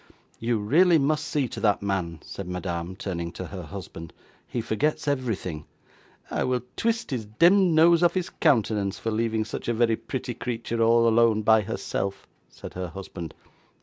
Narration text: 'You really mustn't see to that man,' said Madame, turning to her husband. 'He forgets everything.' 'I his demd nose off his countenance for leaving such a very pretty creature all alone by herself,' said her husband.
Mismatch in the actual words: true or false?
true